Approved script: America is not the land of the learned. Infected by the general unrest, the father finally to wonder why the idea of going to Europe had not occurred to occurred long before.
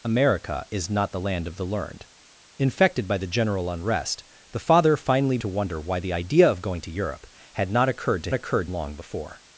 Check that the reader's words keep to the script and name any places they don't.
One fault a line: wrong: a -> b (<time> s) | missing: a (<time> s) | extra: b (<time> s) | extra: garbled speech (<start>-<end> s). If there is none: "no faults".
no faults